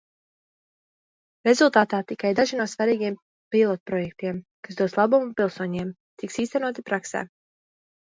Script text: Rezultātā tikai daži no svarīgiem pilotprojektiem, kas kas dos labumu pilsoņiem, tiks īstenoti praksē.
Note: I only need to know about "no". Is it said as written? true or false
true